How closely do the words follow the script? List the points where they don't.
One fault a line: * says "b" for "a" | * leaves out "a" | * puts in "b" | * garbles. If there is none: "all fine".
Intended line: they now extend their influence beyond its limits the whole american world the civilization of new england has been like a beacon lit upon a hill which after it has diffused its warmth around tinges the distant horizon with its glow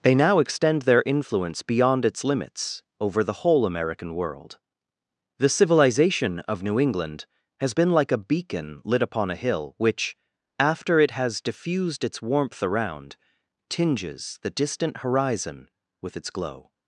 * puts in "over"